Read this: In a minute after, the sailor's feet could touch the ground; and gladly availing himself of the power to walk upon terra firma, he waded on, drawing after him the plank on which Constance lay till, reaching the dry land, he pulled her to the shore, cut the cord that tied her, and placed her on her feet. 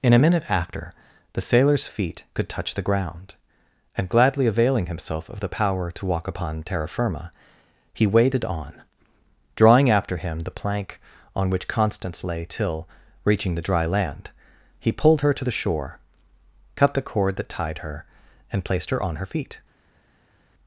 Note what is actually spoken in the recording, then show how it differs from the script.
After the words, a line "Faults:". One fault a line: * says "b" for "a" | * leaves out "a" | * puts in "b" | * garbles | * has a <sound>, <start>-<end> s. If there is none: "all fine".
In a minute after, the sailor's feet could touch the ground; and gladly availing himself of the power to walk upon terra firma, he waded on, drawing after him the plank on which Constance lay till, reaching the dry land, he pulled her to the shore, cut the cord that tied her, and placed her on her feet.
Faults:
all fine